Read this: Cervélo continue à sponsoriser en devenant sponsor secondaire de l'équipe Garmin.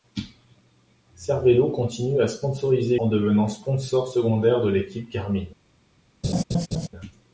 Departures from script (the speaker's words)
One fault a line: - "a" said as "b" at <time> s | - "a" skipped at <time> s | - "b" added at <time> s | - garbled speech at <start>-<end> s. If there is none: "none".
none